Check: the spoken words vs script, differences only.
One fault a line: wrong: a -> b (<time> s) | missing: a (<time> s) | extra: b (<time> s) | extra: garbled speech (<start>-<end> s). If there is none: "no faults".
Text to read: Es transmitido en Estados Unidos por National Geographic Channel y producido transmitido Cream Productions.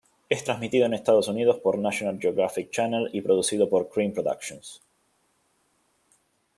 wrong: transmitido -> por (3.7 s)